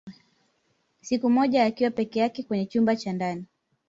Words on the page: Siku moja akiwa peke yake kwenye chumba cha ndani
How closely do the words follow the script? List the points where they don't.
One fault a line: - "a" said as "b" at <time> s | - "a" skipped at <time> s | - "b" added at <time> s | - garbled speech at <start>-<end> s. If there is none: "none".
none